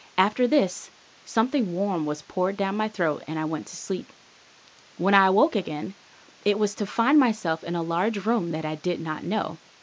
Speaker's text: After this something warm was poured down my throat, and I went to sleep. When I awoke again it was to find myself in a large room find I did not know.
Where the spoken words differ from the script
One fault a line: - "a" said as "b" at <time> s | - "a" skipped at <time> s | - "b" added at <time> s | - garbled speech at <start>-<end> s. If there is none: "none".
- "find" said as "that" at 8.5 s